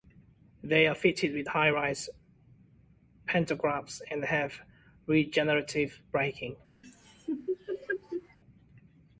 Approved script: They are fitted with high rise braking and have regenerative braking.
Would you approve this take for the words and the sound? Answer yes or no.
no